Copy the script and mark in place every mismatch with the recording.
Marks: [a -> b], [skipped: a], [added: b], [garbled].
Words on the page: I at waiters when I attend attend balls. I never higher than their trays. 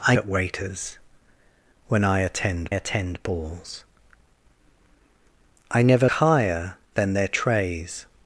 I at waiters when I attend attend balls. I never higher than their trays.